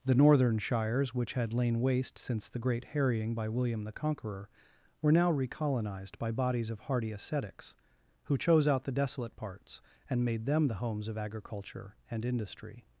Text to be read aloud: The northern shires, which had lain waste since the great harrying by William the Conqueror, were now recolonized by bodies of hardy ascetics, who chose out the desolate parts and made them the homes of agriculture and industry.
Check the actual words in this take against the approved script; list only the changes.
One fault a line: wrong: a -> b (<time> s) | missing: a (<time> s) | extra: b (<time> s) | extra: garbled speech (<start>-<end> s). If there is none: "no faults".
no faults